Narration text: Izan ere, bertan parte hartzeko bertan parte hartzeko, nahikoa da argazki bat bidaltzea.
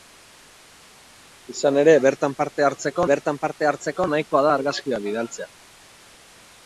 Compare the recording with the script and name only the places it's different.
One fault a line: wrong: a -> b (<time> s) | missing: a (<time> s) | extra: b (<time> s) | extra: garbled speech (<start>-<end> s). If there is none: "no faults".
no faults